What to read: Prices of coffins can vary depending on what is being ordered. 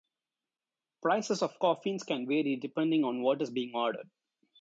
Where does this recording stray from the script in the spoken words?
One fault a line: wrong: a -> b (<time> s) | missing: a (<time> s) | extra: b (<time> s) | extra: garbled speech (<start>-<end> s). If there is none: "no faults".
no faults